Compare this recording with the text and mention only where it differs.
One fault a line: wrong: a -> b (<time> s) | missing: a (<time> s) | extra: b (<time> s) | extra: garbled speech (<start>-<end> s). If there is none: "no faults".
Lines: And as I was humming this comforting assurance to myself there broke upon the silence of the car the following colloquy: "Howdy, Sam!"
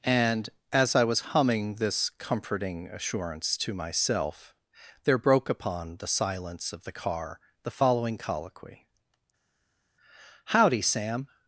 no faults